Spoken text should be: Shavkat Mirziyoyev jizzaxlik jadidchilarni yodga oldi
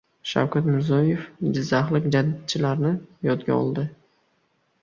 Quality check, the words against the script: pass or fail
pass